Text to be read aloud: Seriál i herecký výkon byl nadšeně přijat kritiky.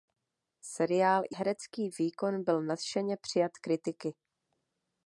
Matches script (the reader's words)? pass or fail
pass